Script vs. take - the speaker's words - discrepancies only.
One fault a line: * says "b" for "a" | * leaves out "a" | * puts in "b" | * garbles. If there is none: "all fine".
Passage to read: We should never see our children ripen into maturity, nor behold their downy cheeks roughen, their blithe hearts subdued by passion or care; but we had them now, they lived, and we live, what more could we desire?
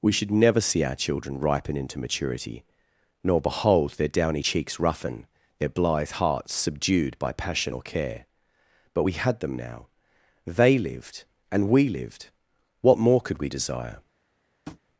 * says "lived" for "live"